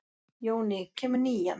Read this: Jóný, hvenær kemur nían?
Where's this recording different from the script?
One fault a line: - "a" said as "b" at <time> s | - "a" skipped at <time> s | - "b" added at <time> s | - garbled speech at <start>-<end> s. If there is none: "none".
- "hvenær" skipped at 0.8 s